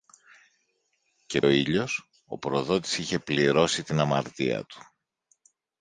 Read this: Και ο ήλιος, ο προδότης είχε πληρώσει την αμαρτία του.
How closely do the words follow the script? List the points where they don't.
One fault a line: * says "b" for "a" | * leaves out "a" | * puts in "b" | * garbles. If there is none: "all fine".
all fine